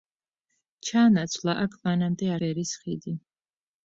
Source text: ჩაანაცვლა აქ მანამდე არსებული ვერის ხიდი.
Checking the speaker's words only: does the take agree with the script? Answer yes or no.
no